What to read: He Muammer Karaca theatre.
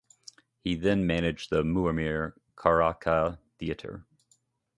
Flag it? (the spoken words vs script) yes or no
yes